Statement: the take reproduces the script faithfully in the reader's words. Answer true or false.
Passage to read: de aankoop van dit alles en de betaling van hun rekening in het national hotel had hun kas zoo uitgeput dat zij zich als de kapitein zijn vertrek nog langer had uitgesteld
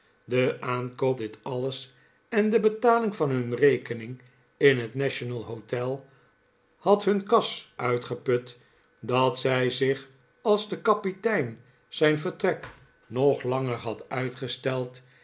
false